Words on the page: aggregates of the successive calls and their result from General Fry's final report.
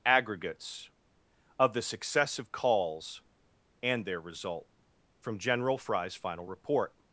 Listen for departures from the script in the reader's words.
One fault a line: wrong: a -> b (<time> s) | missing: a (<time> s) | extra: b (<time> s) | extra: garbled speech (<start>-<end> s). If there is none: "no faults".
no faults